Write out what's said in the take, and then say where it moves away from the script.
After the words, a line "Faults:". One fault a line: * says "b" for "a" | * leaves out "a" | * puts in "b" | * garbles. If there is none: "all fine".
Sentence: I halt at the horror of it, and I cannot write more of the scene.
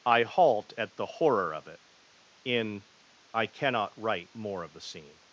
I halt at the horror of it, in I cannot write more of the scene.
Faults:
* says "in" for "and"